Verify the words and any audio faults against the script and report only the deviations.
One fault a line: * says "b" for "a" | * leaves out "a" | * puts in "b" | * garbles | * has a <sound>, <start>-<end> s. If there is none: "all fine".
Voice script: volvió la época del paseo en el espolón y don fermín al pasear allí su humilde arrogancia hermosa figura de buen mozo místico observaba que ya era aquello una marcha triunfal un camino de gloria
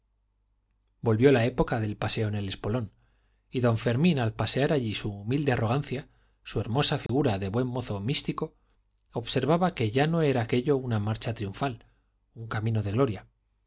* puts in "su"
* has a dropout, 7.1-7.1 s
* puts in "no"